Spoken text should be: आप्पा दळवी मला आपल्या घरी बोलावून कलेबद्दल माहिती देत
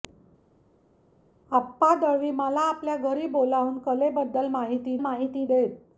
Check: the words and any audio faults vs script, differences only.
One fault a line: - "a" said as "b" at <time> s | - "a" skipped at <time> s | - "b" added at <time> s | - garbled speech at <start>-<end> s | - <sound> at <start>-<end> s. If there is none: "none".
- "माहिती" added at 5.0 s